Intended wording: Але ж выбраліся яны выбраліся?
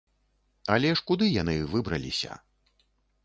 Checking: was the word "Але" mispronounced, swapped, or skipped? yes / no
no